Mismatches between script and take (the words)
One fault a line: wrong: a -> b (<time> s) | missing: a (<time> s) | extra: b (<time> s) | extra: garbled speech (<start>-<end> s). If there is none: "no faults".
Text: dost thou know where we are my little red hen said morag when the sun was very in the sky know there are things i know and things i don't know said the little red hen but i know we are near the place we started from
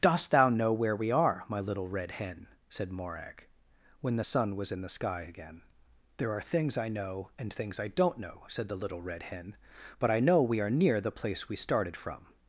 missing: very (4.7 s)
wrong: know -> again (5.2 s)